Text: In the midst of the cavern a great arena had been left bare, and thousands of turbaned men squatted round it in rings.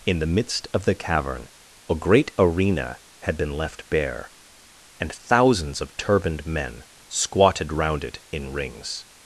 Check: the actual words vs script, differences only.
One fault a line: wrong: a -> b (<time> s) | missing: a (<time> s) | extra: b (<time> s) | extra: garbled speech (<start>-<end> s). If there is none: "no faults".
no faults